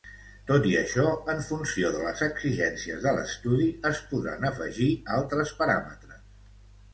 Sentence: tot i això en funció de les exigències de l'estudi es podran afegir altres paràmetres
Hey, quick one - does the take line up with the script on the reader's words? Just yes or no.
yes